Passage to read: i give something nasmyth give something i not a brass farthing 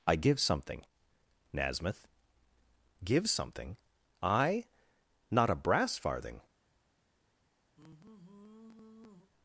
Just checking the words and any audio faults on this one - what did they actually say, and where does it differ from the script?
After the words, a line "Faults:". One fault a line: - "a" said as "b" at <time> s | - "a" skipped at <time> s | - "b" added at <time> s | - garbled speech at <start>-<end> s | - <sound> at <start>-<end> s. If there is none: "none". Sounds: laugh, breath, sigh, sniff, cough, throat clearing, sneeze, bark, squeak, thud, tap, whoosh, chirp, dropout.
i give something nasmyth give something i not a brass farthing
Faults:
- sigh at 7.8-9.3 s